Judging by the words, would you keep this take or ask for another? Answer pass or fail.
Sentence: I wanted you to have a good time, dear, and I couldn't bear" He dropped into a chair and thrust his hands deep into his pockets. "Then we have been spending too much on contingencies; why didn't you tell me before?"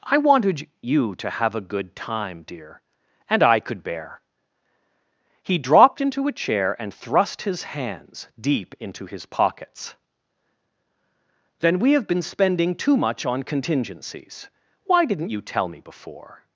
fail